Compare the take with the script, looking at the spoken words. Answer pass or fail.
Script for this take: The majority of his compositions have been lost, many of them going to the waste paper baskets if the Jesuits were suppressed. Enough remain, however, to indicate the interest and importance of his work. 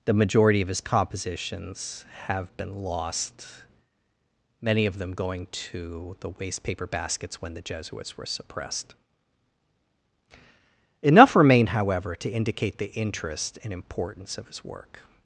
fail